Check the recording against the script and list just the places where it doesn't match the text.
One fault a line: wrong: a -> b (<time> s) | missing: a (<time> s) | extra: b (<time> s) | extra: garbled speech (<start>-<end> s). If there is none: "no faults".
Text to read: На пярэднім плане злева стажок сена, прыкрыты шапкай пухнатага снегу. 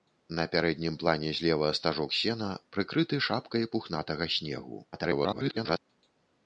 extra: garbled speech (4.9-5.8 s)